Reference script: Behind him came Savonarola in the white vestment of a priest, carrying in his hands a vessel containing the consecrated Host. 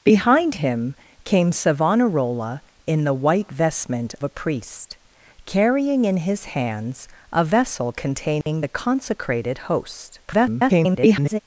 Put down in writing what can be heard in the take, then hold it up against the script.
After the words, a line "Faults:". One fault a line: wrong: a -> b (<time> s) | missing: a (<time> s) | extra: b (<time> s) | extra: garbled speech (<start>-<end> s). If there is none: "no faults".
Behind him came Savonarola in the white vestment a priest, carrying in his hands a vessel containing the consecrated Host. [garbled]
Faults:
missing: of (4.2 s)
extra: garbled speech (10.3-11.4 s)